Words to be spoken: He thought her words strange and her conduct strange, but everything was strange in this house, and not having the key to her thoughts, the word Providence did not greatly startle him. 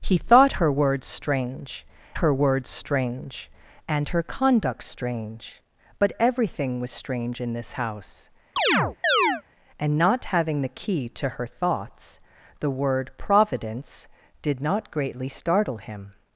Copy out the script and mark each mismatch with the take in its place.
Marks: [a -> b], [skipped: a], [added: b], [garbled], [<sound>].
He thought her words strange [added: her words strange] and her conduct strange, but everything was strange in this house, [chirp] and not having the key to her thoughts, the word Providence did not greatly startle him.